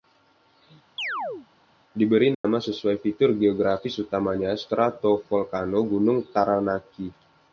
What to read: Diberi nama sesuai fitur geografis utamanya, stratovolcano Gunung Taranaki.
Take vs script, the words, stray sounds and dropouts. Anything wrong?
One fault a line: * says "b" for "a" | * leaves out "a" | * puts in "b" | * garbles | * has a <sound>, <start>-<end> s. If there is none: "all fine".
* has a chirp, 1.0-1.5 s
* has a dropout, 2.3-2.4 s